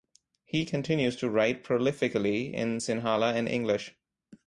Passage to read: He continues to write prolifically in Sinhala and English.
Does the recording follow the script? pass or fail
pass